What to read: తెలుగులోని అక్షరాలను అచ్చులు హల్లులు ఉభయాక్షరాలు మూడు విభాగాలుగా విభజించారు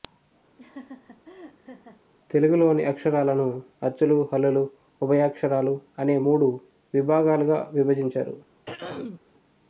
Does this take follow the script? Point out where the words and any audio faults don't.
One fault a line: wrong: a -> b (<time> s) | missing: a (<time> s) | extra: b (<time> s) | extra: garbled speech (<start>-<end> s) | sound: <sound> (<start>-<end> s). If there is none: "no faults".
sound: laugh (0.6-2.0 s)
extra: అనే (6.0 s)
sound: throat clearing (8.7-9.2 s)